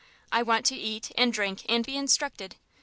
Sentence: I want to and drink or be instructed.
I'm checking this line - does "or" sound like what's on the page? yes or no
no